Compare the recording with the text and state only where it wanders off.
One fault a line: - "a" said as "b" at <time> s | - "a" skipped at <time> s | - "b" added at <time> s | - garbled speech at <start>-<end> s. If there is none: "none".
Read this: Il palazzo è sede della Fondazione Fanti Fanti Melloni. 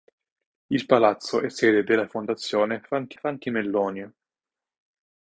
none